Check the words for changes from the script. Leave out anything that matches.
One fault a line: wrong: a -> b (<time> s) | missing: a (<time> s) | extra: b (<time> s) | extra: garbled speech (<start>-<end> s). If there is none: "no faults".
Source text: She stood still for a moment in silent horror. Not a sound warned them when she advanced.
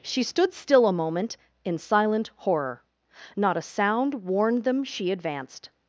missing: for (0.9 s)
missing: when (4.8 s)